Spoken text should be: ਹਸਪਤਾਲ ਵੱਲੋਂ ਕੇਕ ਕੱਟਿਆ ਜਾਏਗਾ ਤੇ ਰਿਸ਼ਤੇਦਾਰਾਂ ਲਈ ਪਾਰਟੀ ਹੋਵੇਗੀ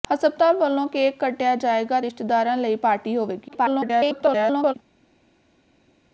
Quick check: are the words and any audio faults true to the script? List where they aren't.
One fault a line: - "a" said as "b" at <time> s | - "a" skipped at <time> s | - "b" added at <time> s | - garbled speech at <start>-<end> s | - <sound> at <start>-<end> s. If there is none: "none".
- "ਤੇ" skipped at 2.0 s
- garbled speech at 3.5-4.7 s